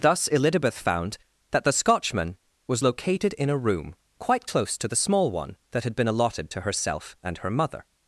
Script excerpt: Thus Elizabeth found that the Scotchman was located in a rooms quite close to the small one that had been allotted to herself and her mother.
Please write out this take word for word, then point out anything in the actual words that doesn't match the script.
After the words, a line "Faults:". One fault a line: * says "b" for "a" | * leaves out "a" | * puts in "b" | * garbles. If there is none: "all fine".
Thus Elizabeth found that the Scotchman was located in a room quite close to the small one that had been allotted to herself and her mother.
Faults:
* says "room" for "rooms"